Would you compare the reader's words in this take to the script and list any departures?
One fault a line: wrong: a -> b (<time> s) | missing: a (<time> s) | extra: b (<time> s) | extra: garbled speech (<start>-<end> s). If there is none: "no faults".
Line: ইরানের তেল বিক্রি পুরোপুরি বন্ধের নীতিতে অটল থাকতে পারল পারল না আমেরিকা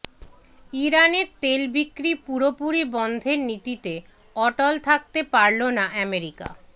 missing: পারল (5.6 s)